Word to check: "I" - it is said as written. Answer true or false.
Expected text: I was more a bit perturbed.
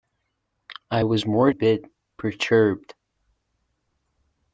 true